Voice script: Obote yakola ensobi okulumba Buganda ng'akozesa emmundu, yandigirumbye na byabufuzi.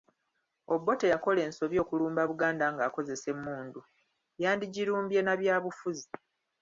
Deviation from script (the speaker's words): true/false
false